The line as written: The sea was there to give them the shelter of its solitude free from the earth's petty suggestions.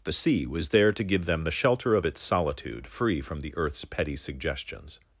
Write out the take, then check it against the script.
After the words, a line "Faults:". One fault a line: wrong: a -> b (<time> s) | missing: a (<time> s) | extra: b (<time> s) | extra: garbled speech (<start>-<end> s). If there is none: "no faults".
The sea was there to give them the shelter of its solitude free from the earth's petty suggestions.
Faults:
no faults